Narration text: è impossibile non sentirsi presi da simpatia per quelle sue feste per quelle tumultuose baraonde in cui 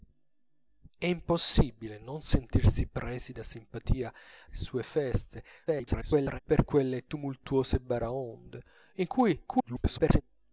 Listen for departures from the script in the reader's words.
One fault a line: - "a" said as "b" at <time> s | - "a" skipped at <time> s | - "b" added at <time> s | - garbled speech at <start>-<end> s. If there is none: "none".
- "per quelle" skipped at 4.1 s
- garbled speech at 5.7-6.4 s
- garbled speech at 9.5-10.2 s